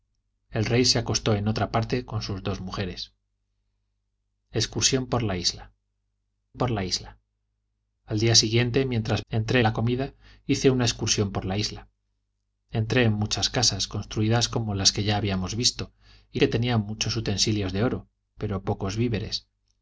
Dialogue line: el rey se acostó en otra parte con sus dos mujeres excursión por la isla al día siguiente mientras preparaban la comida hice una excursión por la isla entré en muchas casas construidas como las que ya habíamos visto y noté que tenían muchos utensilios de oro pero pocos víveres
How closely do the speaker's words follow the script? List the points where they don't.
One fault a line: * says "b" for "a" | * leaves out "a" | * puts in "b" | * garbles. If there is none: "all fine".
* puts in "por la isla"
* says "entré" for "preparaban"
* leaves out "noté"